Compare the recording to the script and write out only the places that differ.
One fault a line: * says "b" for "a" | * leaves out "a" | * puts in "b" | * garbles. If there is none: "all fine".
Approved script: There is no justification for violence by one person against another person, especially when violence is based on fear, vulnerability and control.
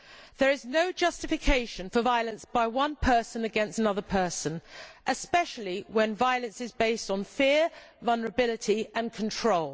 all fine